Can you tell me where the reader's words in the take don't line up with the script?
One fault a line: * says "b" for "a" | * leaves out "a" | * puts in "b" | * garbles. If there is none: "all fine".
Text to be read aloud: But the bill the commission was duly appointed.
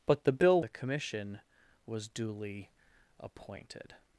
all fine